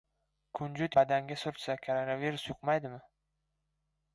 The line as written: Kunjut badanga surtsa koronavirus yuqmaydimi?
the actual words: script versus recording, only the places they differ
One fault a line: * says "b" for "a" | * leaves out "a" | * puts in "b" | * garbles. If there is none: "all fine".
all fine